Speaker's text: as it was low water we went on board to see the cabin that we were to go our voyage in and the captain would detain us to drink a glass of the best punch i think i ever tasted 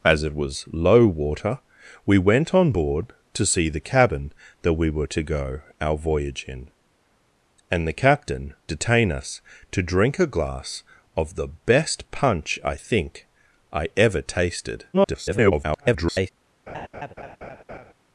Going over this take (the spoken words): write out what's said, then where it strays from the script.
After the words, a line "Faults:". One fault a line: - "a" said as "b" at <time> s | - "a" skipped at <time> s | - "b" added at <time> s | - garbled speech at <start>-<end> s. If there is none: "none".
as it was low water we went on board to see the cabin that we were to go our voyage in and the captain detain us to drink a glass of the best punch i think i ever tasted [garbled]
Faults:
- "would" skipped at 8.6 s
- garbled speech at 14.9-16.3 s